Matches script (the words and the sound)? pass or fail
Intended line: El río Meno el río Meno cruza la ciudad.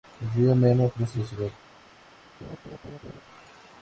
fail